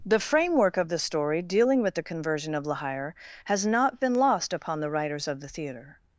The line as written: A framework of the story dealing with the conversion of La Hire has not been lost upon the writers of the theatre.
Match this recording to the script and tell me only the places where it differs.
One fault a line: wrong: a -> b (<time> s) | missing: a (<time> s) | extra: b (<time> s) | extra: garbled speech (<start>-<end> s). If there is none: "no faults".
wrong: A -> The (0.1 s)